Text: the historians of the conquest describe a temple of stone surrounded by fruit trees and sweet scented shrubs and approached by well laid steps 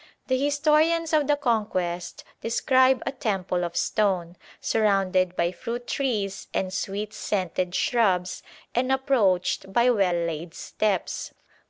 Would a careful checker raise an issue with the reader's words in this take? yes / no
no